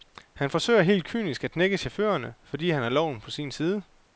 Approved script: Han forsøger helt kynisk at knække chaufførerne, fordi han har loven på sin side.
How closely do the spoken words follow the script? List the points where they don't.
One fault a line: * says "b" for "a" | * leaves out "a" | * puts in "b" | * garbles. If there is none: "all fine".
all fine